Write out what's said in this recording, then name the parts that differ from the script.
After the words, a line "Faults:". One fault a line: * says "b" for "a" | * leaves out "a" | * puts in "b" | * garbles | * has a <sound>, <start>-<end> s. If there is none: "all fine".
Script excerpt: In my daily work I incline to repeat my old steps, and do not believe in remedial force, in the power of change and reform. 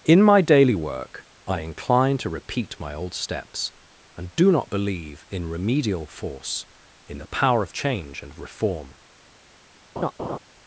In my daily work I incline to repeat my old steps, and do not believe in remedial force, in the power of change and reform.
Faults:
* has a laugh, 10.0-10.4 s